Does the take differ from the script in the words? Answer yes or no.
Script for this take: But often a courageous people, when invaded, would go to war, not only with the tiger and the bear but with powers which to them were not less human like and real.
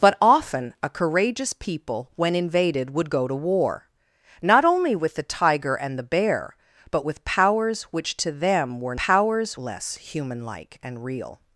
yes